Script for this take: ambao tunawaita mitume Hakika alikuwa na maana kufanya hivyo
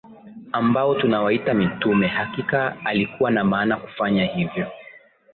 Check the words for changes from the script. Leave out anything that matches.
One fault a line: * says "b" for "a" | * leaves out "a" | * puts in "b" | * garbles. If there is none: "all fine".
all fine